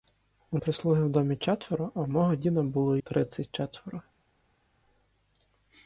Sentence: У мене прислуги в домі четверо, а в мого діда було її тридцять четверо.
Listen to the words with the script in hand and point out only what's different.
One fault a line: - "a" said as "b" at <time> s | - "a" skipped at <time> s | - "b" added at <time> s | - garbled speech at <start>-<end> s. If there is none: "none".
- "мене" skipped at 0.6 s
- "її" skipped at 3.0 s